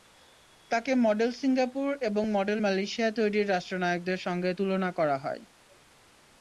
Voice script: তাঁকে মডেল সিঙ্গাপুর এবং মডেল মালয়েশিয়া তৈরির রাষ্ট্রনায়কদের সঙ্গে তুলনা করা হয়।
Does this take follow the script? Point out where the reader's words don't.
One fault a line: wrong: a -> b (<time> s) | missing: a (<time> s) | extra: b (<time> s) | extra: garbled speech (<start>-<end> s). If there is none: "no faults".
no faults